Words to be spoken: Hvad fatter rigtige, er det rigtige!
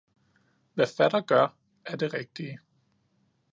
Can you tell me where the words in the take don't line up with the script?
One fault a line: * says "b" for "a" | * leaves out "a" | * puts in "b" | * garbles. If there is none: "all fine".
* says "gør" for "rigtige"